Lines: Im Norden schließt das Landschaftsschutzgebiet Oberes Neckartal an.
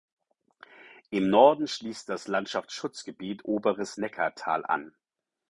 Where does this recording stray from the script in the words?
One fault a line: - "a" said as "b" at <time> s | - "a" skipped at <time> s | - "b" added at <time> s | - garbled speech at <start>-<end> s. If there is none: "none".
none